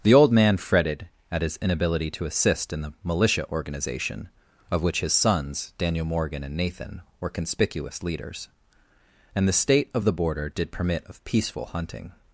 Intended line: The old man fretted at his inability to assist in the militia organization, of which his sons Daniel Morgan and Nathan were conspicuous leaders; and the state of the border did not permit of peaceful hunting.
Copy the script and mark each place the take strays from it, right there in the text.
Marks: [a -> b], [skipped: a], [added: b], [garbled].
The old man fretted at his inability to assist in the militia organization, of which his sons Daniel Morgan and Nathan were conspicuous leaders; and the state of the border did [skipped: not] permit of peaceful hunting.